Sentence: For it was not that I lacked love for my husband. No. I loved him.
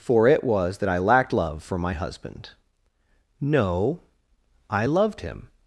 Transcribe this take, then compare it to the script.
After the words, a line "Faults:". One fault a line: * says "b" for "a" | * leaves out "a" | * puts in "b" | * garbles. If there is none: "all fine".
For it was that I lacked love for my husband. No. I loved him.
Faults:
* leaves out "not"